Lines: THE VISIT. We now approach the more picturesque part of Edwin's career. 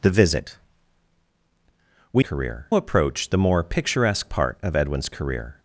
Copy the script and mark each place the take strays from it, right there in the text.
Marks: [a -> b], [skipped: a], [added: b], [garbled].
THE VISIT. We [now -> career] approach the more picturesque part of Edwin's career.